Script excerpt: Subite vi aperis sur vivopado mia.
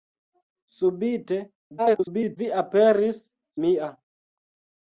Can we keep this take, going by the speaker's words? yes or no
no